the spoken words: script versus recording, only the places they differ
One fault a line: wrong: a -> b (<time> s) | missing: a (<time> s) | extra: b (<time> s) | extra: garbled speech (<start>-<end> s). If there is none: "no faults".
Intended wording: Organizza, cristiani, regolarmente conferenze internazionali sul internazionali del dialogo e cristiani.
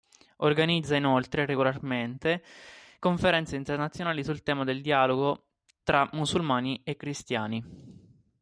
wrong: cristiani -> inoltre (0.9 s)
wrong: internazionali -> tema (4.4 s)
extra: tra musulmani (5.8 s)